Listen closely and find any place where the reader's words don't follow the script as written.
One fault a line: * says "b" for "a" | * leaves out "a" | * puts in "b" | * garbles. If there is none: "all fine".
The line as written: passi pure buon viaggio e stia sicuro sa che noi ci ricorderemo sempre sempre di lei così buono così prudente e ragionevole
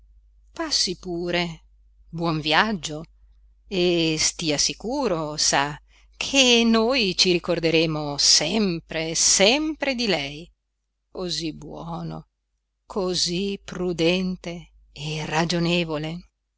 all fine